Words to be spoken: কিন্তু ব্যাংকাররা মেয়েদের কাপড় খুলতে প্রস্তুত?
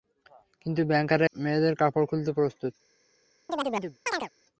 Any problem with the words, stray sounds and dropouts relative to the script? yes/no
yes